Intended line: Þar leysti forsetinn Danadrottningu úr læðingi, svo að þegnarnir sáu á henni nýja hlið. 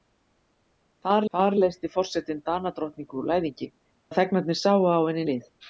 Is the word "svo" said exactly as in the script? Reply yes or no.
no